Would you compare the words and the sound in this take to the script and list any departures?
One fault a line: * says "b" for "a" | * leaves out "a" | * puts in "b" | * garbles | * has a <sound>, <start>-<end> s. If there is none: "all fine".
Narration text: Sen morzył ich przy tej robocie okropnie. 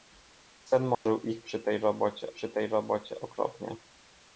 * has a dropout, 0.9-1.1 s
* puts in "przy tej robocie"